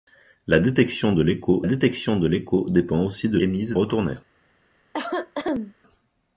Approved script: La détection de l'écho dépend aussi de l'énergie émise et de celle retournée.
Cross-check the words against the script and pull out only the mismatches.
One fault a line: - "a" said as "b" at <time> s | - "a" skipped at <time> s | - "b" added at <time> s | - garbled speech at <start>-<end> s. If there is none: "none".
- "détection de l'écho" added at 1.6 s
- "l'énergie" skipped at 3.4 s
- "de celle" skipped at 3.8 s